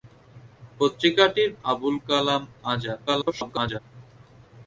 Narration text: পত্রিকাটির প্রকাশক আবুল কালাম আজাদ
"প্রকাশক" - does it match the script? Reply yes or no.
no